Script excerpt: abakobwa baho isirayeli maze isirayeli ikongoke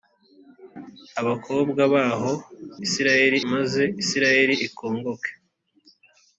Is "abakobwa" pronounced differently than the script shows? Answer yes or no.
no